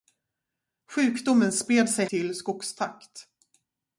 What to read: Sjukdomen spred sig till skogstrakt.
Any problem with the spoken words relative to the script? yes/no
no